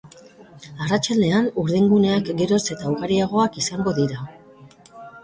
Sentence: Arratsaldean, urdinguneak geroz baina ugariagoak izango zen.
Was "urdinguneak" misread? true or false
false